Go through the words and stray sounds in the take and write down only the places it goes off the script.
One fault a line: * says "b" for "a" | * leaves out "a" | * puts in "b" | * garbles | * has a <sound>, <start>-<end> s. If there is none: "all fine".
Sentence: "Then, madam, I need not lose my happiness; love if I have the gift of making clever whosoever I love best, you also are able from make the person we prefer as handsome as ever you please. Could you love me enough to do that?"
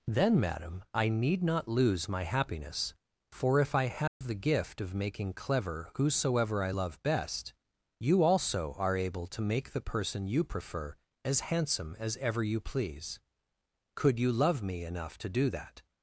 * says "for" for "love"
* has a dropout, 4.1-4.2 s
* says "to" for "from"
* says "you" for "we"